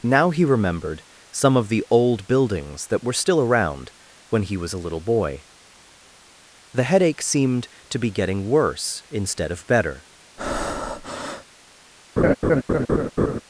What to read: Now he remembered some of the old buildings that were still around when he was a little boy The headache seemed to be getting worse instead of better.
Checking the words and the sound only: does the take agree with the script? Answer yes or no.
no